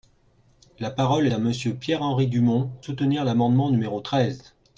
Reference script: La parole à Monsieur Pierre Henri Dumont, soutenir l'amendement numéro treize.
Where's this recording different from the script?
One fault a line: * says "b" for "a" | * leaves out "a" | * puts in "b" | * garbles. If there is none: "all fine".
all fine